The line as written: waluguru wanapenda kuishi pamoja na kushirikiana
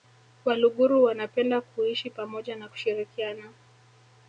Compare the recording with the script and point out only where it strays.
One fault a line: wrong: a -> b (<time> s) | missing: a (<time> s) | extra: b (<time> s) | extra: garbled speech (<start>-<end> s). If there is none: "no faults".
no faults